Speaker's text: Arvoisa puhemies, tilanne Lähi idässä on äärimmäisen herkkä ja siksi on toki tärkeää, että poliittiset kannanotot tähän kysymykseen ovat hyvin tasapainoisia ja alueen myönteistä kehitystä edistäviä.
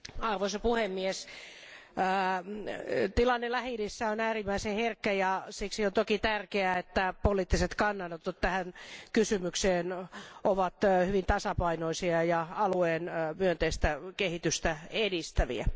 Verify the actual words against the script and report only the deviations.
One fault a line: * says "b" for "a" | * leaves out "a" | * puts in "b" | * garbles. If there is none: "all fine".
all fine